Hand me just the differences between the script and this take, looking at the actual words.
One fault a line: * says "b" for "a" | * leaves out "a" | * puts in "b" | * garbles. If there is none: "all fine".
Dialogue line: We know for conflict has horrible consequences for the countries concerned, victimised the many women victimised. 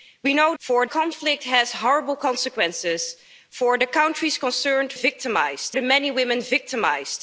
all fine